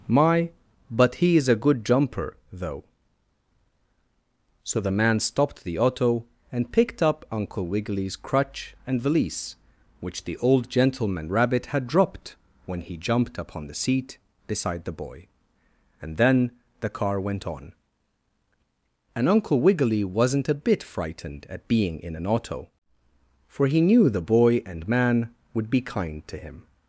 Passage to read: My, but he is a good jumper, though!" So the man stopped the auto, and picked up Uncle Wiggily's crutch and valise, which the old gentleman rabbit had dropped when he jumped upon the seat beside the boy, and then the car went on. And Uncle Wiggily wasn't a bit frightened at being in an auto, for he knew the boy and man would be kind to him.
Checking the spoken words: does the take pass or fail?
pass